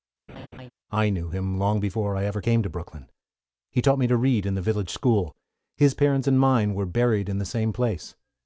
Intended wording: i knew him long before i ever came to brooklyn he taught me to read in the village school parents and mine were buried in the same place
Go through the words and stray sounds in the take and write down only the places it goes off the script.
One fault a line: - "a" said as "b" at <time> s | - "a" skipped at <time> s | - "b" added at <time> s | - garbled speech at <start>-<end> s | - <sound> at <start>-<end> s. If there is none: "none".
- laugh at 0.3-0.7 s
- "his" added at 5.7 s